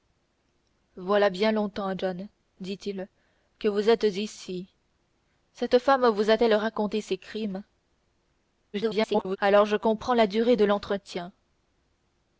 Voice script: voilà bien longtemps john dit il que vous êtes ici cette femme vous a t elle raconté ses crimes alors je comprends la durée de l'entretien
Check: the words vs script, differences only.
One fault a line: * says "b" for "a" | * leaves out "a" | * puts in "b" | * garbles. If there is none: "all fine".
* garbles